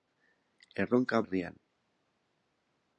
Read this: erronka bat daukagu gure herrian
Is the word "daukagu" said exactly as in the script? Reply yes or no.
no